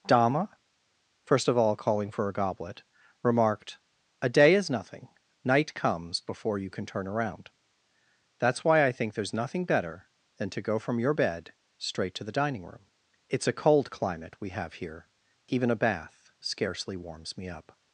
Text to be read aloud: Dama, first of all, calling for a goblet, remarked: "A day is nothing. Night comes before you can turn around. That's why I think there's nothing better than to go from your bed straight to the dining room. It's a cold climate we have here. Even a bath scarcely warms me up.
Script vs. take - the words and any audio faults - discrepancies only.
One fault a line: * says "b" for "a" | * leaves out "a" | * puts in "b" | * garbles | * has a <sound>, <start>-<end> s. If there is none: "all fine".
all fine